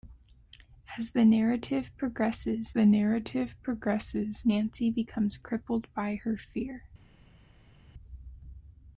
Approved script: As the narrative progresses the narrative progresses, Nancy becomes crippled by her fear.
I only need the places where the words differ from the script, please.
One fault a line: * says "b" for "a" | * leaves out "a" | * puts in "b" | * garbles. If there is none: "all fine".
all fine